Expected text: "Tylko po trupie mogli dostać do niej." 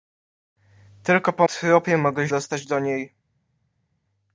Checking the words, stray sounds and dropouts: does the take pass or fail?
pass